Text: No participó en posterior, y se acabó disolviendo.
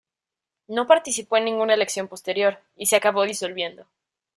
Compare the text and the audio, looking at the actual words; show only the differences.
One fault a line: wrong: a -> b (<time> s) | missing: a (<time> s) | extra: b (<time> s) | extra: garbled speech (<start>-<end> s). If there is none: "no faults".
extra: ninguna elección (1.4 s)